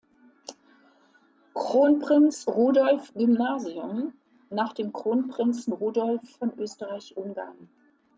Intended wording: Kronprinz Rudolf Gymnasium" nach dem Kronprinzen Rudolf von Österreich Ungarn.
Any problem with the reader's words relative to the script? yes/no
no